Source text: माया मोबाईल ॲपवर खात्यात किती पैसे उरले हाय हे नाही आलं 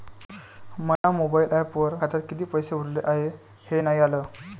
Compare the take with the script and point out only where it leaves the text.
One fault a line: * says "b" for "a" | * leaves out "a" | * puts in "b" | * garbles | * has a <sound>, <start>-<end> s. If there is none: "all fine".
* has a dropout, 1.0-1.0 s